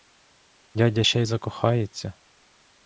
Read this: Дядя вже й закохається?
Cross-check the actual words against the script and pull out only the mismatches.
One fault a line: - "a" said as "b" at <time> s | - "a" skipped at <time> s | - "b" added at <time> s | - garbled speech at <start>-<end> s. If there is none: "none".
- "вже" said as "ще" at 1.0 s